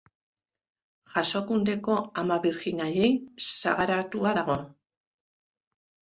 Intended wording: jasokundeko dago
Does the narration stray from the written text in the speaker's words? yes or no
yes